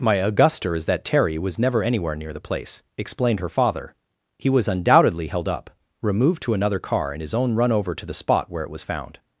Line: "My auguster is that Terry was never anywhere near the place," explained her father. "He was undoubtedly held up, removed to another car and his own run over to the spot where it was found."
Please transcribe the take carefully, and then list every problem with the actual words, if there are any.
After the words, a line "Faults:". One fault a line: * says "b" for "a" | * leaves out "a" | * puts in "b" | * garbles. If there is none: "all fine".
"My auguster is that Terry was never anywhere near the place," explained her father. "He was undoubtedly held up, removed to another car and his own run over to the spot where it was found."
Faults:
all fine